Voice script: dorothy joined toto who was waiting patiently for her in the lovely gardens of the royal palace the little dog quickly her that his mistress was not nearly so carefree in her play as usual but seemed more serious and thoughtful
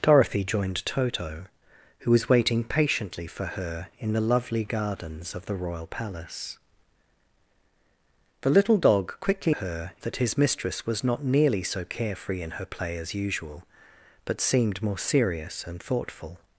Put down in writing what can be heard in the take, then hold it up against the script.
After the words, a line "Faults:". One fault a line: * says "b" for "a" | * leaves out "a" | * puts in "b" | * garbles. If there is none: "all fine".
dorothy joined toto who was waiting patiently for her in the lovely gardens of the royal palace the little dog quickly her that his mistress was not nearly so carefree in her play as usual but seemed more serious and thoughtful
Faults:
all fine